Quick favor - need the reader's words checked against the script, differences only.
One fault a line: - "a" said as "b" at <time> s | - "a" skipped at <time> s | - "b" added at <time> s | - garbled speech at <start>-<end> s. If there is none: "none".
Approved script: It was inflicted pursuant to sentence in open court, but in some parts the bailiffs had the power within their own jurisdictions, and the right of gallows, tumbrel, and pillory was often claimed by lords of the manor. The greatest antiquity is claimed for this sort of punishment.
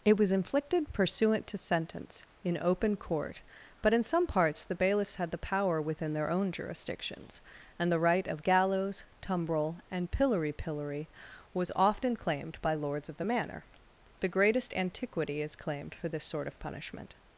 - "pillory" added at 10.5 s